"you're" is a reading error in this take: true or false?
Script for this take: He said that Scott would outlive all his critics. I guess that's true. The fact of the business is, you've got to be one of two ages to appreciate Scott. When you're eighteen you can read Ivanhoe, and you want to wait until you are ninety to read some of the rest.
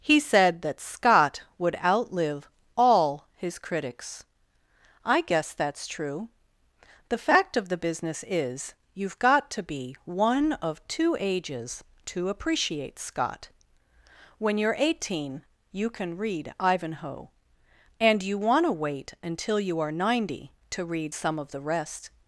false